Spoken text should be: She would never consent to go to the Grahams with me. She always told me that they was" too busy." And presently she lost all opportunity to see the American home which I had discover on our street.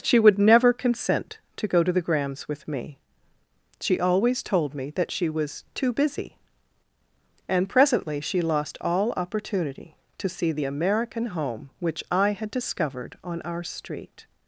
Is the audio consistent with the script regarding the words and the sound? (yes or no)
no